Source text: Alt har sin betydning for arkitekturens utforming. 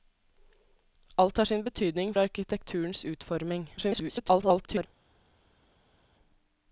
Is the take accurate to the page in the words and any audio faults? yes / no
no